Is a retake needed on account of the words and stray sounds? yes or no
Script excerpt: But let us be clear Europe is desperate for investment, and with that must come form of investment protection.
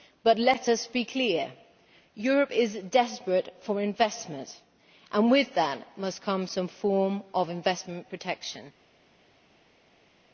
yes